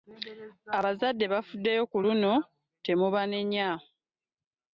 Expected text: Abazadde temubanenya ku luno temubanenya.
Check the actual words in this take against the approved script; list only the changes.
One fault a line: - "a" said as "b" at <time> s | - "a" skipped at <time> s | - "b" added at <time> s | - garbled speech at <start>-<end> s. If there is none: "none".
- "temubanenya" said as "bafuddeyo" at 1.3 s